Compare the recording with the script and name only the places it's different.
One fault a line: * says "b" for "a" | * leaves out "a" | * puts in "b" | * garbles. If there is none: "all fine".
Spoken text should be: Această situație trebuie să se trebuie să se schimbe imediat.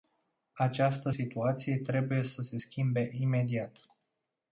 * leaves out "trebuie să se"